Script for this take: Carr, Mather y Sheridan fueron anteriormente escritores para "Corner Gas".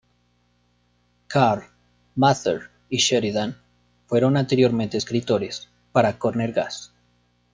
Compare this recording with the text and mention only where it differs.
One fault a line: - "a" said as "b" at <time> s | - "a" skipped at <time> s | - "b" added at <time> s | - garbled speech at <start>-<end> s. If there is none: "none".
none